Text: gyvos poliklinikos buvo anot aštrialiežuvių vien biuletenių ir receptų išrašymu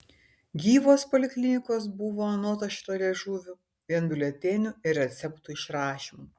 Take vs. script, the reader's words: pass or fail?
pass